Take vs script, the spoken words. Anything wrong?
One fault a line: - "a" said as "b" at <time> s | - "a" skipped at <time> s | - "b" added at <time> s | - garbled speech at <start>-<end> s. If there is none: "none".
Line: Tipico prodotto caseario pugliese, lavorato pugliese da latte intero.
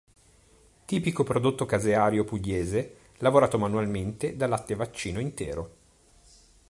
- "pugliese" said as "manualmente" at 3.6 s
- "vaccino" added at 4.8 s